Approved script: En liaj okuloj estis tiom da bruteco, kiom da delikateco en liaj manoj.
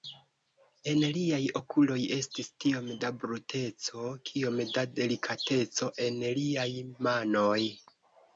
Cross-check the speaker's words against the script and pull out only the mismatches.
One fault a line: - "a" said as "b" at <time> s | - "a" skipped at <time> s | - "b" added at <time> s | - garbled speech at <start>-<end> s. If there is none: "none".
none